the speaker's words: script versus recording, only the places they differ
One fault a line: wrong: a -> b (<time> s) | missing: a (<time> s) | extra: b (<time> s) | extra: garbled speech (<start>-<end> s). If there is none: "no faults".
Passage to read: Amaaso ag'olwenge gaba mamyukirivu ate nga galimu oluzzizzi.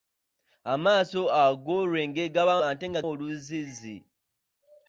missing: mamyukirivu (2.5 s)
missing: galimu (3.0 s)